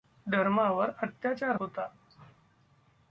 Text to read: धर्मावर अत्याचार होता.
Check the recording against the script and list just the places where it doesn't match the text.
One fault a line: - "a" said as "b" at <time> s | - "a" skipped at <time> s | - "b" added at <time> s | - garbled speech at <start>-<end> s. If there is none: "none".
none